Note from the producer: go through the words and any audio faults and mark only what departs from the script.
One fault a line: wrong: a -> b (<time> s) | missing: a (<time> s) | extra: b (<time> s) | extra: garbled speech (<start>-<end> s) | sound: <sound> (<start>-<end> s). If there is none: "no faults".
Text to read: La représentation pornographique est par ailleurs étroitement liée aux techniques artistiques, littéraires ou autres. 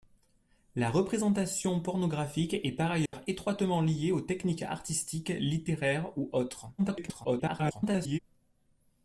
sound: dropout (3.1-3.1 s)
extra: garbled speech (6.8-8.2 s)